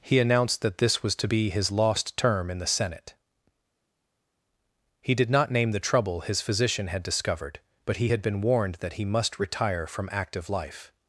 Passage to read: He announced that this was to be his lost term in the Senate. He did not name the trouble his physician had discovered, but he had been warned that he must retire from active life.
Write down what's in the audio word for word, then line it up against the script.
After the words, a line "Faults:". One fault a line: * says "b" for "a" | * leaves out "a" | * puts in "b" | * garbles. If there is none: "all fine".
He announced that this was to be his lost term in the Senate. He did not name the trouble his physician had discovered, but he had been warned that he must retire from active life.
Faults:
all fine